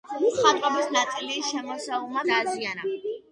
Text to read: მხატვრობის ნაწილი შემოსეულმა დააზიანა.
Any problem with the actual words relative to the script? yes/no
no